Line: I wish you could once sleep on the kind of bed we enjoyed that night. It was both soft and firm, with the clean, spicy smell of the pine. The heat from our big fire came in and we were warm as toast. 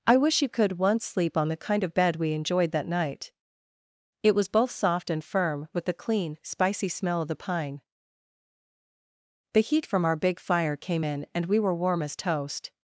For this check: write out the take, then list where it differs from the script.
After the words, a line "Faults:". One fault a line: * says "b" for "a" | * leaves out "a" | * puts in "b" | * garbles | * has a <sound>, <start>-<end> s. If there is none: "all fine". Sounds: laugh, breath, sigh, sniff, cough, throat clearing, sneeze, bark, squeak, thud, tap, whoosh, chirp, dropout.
I wish you could once sleep on the kind of bed we enjoyed that night. It was both soft and firm, with the clean, spicy smell of the pine. The heat from our big fire came in and we were warm as toast.
Faults:
all fine